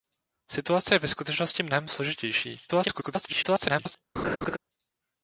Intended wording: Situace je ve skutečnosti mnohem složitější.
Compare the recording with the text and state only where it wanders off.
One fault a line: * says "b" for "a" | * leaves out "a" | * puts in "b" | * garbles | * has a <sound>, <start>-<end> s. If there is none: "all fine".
* garbles
* has a laugh, 4.2-4.6 s